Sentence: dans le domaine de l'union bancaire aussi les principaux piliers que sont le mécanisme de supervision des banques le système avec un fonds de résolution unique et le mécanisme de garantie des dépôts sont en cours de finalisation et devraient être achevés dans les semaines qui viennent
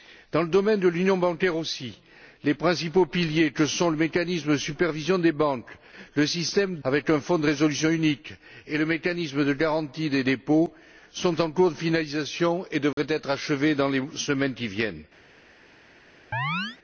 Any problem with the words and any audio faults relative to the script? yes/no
yes